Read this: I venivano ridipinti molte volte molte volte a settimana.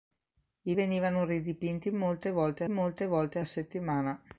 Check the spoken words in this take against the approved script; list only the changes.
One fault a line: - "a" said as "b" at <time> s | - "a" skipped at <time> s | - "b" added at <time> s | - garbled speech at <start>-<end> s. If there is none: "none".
none